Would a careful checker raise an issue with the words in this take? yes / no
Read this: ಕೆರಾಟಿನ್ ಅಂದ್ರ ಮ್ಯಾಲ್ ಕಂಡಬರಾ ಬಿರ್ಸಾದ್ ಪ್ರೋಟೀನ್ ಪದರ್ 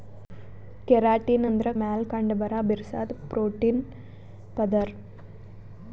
no